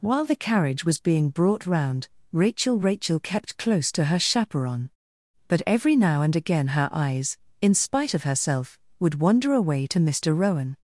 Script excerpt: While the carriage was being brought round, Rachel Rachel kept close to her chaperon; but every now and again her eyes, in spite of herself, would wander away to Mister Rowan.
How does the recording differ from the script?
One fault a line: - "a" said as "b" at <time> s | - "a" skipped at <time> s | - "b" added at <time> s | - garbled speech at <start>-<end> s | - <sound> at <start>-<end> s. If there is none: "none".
none